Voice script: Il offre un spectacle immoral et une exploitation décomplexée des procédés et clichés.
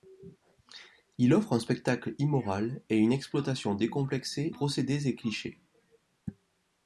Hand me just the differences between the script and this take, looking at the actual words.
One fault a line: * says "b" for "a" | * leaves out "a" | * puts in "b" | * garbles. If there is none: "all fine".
* leaves out "des"